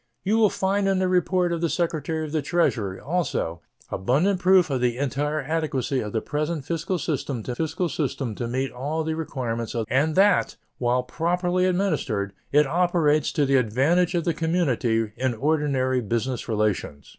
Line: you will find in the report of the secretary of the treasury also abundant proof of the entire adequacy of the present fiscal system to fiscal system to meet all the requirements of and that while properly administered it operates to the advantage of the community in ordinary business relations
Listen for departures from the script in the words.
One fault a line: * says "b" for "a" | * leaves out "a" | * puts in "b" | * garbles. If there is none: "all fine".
all fine